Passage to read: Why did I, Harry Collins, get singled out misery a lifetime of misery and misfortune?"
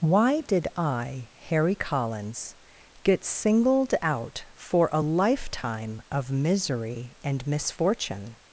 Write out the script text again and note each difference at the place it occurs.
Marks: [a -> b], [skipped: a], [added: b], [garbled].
Why did I, Harry Collins, get singled out [misery -> for] a lifetime of misery and misfortune?"